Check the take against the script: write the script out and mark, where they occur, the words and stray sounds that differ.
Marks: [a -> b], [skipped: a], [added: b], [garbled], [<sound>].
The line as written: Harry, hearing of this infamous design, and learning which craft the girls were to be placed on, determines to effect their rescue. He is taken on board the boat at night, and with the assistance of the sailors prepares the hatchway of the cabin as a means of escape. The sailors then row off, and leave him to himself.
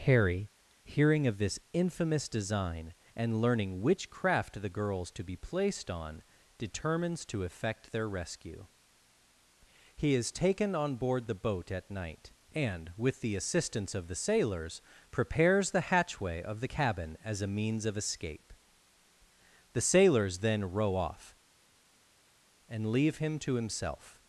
Harry, hearing of this infamous design, and learning which craft the girls [skipped: were] to be placed on, determines to effect their rescue. He is taken on board the boat at night, and with the assistance of the sailors prepares the hatchway of the cabin as a means of escape. The sailors then row off, and leave him to himself.